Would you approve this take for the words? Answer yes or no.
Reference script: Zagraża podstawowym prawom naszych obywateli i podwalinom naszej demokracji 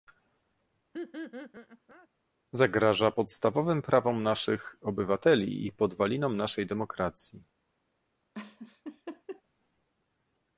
yes